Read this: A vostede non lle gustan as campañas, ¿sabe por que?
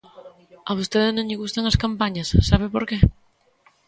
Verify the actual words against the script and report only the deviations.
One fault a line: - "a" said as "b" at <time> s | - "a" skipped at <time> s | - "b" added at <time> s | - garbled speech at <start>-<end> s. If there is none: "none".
none